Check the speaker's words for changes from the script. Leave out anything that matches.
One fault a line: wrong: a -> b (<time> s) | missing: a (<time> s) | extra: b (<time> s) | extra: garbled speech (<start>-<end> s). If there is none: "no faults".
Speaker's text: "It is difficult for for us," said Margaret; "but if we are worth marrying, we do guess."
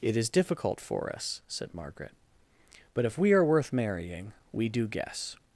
missing: for (1.1 s)